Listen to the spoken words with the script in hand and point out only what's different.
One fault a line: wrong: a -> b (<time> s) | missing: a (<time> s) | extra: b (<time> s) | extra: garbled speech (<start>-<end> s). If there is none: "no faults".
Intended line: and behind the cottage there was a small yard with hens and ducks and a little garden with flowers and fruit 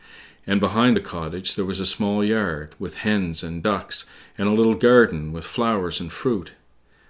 no faults